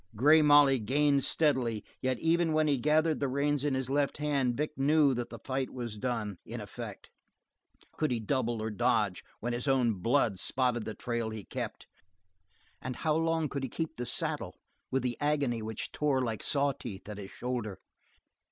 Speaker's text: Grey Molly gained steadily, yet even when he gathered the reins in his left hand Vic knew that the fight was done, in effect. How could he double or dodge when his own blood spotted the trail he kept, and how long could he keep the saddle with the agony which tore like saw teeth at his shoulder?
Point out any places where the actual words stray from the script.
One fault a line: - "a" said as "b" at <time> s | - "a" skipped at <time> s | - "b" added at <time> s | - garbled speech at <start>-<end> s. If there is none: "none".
- "How" skipped at 7.1 s